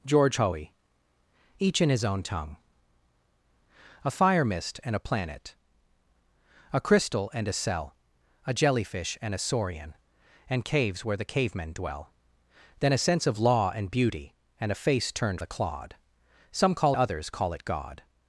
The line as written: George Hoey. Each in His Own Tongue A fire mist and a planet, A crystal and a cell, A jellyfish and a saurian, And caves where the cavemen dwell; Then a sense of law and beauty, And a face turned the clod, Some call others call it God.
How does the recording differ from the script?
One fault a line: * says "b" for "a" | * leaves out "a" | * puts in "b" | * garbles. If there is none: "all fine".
all fine